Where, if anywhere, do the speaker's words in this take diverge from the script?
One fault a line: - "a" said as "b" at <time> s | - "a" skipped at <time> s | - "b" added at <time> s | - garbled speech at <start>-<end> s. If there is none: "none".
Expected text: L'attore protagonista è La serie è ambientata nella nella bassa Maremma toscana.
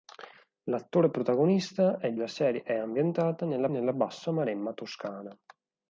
none